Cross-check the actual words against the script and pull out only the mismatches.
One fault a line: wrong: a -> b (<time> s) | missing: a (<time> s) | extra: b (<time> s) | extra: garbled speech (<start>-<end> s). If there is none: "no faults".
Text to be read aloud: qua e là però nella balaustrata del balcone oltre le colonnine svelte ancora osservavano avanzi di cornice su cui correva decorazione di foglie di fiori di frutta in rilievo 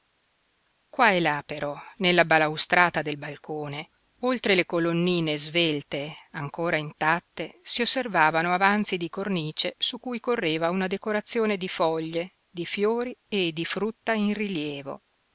extra: intatte si (6.8 s)
extra: una (10.7 s)
extra: e (13.3 s)